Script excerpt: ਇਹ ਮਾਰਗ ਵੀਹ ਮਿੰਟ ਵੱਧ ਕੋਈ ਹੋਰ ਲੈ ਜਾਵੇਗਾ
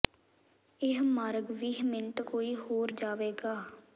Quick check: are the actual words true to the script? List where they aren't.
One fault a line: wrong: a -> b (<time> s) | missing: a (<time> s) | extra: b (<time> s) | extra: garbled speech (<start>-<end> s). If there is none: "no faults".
missing: ਵੱਧ (2.2 s)
missing: ਲੈ (2.9 s)